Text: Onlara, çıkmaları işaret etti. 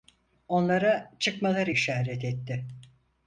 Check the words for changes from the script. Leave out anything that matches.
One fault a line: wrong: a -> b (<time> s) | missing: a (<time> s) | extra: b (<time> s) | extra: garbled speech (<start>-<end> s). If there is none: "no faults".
no faults